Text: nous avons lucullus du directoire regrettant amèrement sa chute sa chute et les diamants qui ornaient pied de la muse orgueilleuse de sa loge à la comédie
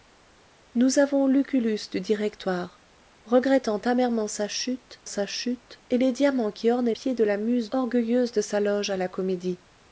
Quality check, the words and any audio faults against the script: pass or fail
pass